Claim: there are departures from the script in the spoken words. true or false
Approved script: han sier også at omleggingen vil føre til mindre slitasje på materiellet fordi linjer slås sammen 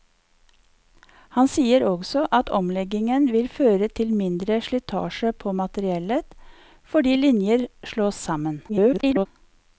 true